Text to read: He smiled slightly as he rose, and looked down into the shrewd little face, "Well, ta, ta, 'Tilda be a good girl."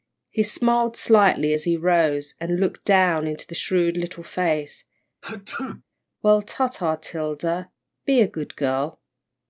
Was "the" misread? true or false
false